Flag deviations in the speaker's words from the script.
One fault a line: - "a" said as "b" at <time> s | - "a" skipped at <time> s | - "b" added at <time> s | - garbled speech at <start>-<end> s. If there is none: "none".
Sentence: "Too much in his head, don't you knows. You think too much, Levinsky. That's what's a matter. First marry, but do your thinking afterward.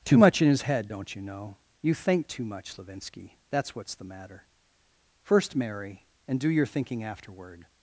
- "knows" said as "know" at 1.2 s
- "a" said as "the" at 3.9 s
- "but" said as "and" at 6.3 s